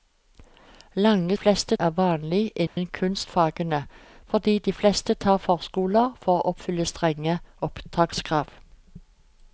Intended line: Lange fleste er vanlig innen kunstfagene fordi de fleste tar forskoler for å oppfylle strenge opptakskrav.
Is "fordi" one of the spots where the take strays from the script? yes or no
no